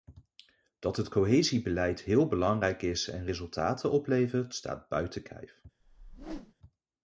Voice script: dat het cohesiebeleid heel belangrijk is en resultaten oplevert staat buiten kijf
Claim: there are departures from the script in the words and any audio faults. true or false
true